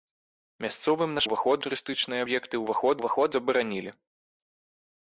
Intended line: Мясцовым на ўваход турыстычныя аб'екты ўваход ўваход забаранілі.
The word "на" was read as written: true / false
true